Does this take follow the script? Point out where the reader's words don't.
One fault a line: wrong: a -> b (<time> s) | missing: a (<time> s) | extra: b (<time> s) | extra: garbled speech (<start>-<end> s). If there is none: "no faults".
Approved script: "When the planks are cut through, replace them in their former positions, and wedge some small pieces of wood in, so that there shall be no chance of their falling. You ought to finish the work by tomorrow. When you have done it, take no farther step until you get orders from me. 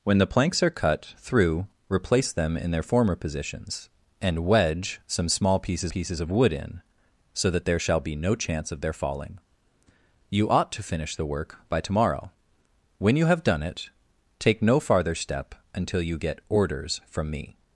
extra: pieces (5.9 s)